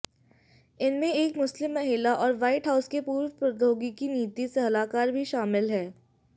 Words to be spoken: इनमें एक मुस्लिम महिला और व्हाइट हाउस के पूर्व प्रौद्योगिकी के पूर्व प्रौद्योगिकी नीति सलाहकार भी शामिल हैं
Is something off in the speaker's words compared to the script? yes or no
yes